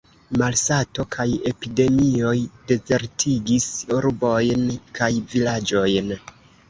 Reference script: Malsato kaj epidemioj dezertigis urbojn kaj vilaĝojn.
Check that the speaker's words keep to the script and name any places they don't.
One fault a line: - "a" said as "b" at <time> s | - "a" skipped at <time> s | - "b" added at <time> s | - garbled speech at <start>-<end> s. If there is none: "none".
none